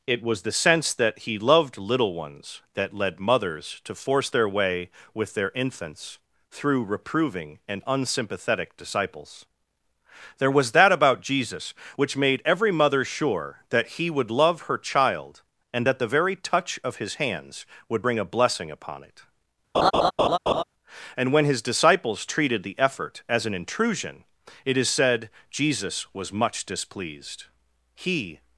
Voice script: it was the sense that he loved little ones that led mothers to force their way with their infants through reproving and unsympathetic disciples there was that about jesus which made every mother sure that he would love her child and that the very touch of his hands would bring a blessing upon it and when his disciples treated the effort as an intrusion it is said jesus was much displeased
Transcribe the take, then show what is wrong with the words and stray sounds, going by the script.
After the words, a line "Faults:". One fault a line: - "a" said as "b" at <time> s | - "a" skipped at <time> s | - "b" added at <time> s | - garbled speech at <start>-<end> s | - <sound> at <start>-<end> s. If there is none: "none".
it was the sense that he loved little ones that led mothers to force their way with their infants through reproving and unsympathetic disciples there was that about jesus which made every mother sure that he would love her child and that the very touch of his hands would bring a blessing upon it and when his disciples treated the effort as an intrusion it is said jesus was much displeased he
Faults:
- laugh at 19.7-20.6 s
- "he" added at 27.9 s